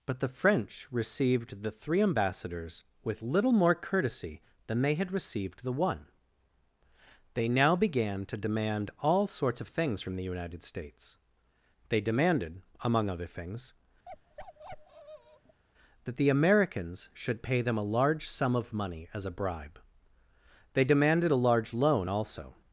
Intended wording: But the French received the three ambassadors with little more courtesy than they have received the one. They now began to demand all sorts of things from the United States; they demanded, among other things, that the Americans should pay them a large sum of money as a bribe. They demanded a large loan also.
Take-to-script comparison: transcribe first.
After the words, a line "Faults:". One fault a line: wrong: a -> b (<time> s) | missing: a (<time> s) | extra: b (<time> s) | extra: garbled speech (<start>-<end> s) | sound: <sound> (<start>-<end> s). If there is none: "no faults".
But the French received the three ambassadors with little more courtesy than they had received the one. They now began to demand all sorts of things from the United States; they demanded, among other things, that the Americans should pay them a large sum of money as a bribe. They demanded a large loan also.
Faults:
wrong: have -> had (5.0 s)
sound: bark (14.1-15.6 s)